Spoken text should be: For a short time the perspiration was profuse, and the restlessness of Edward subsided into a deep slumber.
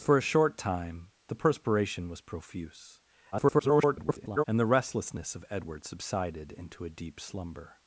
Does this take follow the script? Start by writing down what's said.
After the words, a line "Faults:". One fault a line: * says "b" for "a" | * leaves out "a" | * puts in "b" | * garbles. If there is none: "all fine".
For a short time the perspiration was profuse, [garbled] and the restlessness of Edward subsided into a deep slumber.
Faults:
* garbles